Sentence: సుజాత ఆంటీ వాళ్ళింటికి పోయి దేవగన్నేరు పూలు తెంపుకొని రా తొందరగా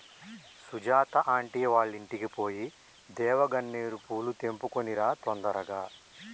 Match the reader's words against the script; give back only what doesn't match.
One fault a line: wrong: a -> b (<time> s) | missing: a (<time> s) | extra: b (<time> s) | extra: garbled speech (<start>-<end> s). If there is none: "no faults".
no faults